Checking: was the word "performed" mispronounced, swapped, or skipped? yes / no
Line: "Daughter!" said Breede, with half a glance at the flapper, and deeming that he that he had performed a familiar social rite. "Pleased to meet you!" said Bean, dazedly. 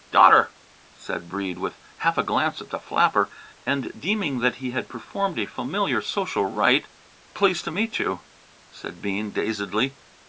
no